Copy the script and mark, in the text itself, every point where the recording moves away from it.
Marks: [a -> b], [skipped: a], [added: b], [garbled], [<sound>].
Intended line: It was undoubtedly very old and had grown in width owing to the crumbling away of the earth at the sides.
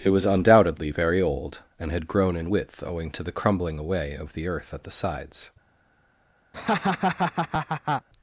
It was undoubtedly very old and had grown in width owing to the crumbling away of the earth at the sides. [laugh]